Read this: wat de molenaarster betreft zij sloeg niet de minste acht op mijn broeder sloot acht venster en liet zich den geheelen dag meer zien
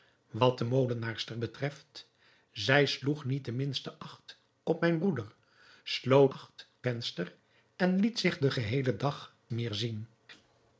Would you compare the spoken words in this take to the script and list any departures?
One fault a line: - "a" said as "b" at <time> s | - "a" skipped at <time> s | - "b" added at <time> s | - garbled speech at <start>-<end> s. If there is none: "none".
none